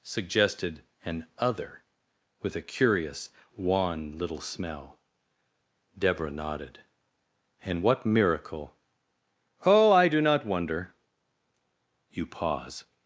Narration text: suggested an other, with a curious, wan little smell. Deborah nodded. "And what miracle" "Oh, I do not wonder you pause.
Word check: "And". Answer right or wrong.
right